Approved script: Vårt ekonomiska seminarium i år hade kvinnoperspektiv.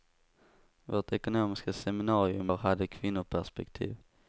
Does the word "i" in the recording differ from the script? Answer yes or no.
yes